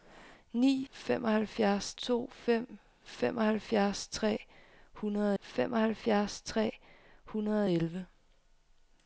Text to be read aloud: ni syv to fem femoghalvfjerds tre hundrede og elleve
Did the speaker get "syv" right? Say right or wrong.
wrong